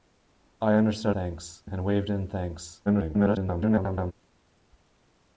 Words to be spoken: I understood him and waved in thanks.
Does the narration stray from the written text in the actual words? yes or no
yes